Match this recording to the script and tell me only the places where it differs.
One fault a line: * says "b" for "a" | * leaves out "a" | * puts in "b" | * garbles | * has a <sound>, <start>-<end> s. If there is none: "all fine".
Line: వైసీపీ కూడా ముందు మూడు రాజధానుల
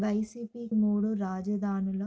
* leaves out "కూడా ముందు"